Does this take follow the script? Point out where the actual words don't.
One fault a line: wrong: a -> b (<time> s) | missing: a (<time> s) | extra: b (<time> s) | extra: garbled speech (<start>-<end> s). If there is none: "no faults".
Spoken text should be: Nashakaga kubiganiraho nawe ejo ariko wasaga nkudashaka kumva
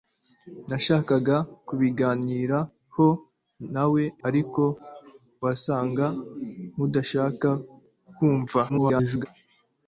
missing: ejo (4.0 s)
extra: garbled speech (8.7-9.3 s)